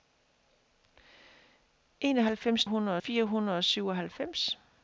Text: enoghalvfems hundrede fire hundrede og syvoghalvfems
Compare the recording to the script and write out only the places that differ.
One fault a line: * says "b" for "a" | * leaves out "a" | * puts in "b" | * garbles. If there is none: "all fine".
all fine